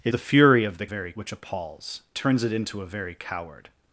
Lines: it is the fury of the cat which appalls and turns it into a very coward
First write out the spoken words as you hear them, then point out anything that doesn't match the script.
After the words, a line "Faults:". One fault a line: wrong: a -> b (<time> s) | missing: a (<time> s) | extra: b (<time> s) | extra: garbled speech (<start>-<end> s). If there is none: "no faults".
it the fury of the very which appalls turns it into a very coward
Faults:
missing: is (0.1 s)
wrong: cat -> very (0.8 s)
missing: and (2.0 s)